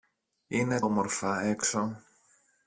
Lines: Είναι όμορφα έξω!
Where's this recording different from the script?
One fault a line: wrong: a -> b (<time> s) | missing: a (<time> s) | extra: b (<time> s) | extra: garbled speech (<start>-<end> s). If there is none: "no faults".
no faults